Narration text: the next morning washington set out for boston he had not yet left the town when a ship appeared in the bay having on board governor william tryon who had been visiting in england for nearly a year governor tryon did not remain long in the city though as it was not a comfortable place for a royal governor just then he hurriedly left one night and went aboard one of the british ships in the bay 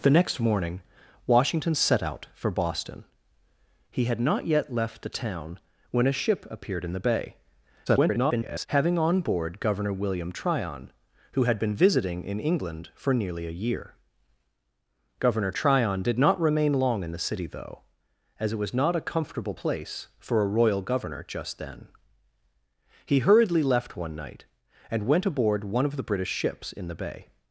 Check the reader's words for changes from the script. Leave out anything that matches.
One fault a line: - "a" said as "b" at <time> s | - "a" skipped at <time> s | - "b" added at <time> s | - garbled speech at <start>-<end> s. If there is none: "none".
- garbled speech at 7.9-8.7 s